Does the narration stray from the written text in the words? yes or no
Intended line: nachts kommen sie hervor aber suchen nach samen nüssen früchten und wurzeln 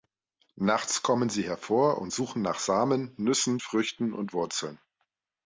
yes